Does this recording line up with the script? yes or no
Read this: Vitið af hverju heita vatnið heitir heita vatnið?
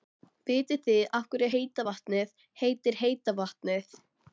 no